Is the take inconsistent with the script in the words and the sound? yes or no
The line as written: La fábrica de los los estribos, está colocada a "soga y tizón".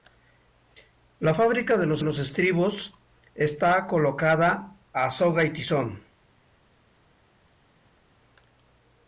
no